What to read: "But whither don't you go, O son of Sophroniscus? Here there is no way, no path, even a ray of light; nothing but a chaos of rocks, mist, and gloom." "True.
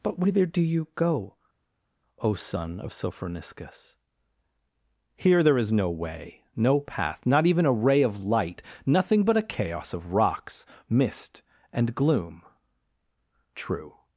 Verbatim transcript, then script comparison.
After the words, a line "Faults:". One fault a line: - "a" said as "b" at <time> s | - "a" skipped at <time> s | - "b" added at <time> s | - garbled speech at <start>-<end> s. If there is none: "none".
"But whither do you go, O son of Sophroniscus? Here there is no way, no path, not even a ray of light; nothing but a chaos of rocks, mist, and gloom." "True.
Faults:
- "don't" said as "do" at 0.5 s
- "not" added at 7.2 s